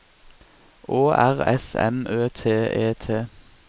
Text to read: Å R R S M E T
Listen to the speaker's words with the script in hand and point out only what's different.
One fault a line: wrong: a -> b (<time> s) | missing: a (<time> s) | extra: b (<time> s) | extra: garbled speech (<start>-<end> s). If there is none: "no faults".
missing: R (1.4 s)
extra: Ø T (2.1 s)